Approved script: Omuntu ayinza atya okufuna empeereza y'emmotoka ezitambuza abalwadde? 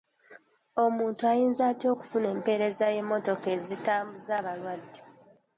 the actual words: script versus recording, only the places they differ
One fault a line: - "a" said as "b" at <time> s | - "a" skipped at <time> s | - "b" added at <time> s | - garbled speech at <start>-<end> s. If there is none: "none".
none